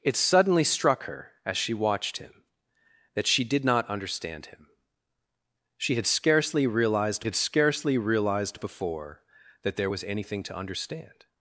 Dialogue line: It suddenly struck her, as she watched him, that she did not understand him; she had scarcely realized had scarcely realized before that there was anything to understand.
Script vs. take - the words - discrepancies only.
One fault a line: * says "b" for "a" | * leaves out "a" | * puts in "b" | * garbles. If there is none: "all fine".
all fine